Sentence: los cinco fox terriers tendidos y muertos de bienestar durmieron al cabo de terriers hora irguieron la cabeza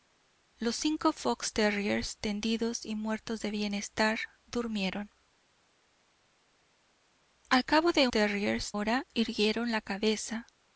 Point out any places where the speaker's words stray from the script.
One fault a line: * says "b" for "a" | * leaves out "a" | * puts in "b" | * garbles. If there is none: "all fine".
all fine